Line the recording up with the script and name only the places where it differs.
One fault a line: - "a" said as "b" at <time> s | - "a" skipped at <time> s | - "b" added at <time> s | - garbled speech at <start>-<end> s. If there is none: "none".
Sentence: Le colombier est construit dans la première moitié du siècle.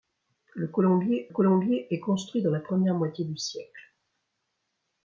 - "colombier" added at 1.3 s